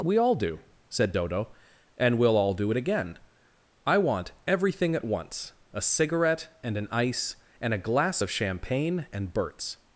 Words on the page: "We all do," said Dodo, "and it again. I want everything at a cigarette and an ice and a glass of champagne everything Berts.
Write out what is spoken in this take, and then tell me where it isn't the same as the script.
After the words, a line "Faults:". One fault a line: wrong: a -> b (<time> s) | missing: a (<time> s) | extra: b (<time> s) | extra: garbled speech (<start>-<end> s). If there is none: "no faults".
"We all do," said Dodo, "and we'll all do it again. I want everything at once, a cigarette and an ice and a glass of champagne and Berts.
Faults:
extra: we'll all do (2.2 s)
extra: once (5.0 s)
wrong: everything -> and (9.1 s)